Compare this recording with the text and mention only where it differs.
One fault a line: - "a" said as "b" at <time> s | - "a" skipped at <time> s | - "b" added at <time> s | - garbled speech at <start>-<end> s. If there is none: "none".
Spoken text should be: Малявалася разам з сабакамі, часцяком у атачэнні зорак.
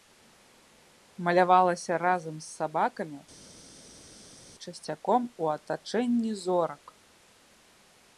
none